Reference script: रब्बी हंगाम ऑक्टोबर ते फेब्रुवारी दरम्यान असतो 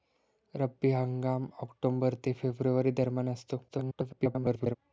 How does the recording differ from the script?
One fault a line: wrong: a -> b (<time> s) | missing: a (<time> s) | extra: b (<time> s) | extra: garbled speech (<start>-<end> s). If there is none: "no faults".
extra: garbled speech (3.7-4.8 s)